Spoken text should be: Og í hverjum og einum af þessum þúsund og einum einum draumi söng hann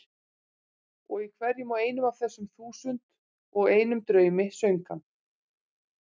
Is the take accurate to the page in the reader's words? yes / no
no